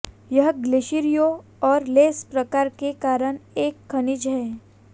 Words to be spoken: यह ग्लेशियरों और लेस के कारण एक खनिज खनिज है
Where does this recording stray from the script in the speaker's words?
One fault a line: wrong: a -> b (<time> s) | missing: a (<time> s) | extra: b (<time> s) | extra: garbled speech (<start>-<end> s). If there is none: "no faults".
extra: प्रकार (2.3 s)
missing: खनिज (4.3 s)